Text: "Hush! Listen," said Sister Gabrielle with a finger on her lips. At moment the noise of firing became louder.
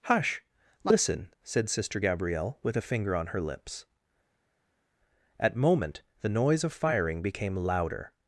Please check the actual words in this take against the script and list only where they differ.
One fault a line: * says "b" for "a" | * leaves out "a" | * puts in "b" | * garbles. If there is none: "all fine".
all fine